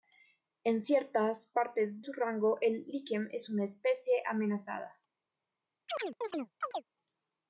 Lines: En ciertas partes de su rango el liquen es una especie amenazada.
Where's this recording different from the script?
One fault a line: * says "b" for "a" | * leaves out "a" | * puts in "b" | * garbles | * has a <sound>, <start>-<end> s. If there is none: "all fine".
* leaves out "de"
* has a chirp, 5.9-6.8 s